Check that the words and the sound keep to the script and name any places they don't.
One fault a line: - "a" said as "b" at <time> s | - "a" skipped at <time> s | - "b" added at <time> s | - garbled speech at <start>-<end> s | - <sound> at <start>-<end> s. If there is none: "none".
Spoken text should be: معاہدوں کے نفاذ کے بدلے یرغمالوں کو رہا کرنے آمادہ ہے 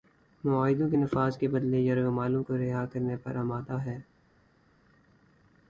- "پر" added at 3.2 s